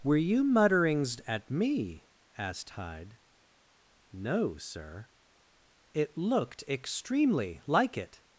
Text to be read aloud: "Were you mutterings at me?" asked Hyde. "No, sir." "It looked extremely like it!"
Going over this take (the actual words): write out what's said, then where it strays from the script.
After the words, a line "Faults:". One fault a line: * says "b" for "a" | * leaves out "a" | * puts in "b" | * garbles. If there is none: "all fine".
"Were you mutterings at me?" asked Hyde. "No, sir." "It looked extremely like it!"
Faults:
all fine